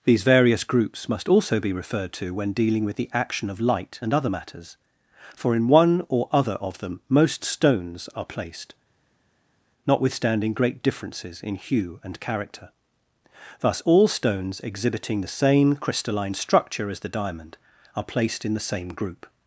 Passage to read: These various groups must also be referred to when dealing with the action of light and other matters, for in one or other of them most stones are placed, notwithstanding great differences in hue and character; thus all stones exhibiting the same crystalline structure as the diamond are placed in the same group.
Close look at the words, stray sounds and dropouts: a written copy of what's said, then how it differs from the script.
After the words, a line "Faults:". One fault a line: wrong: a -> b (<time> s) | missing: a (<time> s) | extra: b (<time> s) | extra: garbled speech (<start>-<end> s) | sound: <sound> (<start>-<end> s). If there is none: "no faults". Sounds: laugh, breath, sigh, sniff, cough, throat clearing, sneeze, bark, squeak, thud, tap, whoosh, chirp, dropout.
These various groups must also be referred to when dealing with the action of light and other matters, for in one or other of them most stones are placed, notwithstanding great differences in hue and character; thus all stones exhibiting the same crystalline structure as the diamond are placed in the same group.
Faults:
no faults